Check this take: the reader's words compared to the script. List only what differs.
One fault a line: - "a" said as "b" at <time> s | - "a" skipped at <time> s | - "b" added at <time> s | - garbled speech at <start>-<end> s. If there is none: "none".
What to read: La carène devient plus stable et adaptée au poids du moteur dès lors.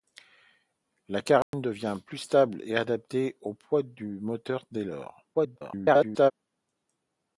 - garbled speech at 5.3-6.3 s